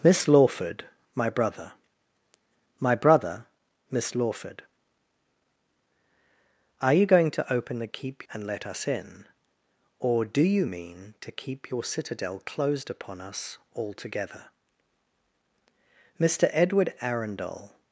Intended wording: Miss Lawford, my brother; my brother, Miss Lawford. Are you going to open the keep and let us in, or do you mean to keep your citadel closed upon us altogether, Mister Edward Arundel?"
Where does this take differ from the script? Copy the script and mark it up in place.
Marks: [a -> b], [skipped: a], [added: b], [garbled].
Miss Lawford, my brother; my brother, Miss Lawford. Are you going to open the keep and let us in, or do you mean to keep your citadel closed upon us altogether, Mister Edward Arundel?"